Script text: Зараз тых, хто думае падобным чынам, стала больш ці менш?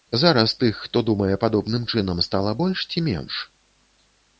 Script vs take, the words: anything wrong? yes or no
no